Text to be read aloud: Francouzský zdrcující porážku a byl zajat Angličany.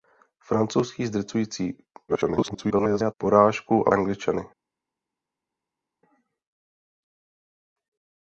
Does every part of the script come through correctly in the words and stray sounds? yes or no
no